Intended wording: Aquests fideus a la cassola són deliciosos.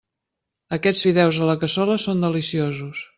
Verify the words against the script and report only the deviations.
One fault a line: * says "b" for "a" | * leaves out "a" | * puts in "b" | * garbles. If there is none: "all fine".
all fine